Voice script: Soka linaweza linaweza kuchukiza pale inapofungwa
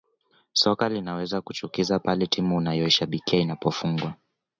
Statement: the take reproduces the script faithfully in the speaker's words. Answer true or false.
false